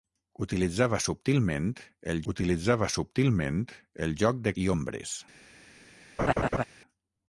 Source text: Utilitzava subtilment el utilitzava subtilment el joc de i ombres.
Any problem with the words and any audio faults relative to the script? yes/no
yes